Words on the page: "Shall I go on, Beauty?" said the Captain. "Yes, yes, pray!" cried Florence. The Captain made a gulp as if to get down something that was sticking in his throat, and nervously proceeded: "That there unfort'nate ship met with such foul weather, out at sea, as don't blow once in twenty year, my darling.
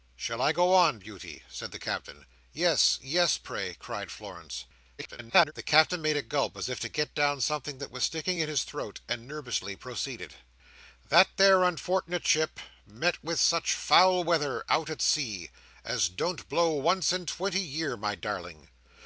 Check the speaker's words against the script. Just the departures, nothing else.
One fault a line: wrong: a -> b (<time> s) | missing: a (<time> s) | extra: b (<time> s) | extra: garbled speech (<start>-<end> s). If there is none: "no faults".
extra: garbled speech (5.0-5.5 s)